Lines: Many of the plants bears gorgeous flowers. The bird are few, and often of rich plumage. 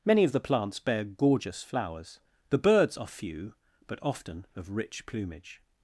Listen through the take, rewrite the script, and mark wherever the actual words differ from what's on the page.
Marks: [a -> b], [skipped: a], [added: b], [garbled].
Many of the plants [bears -> bear] gorgeous flowers. The [bird -> birds] are few, [and -> but] often of rich plumage.